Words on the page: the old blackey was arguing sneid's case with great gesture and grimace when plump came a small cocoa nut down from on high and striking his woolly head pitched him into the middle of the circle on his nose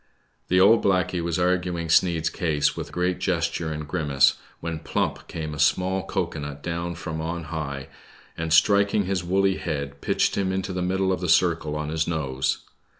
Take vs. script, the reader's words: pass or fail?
pass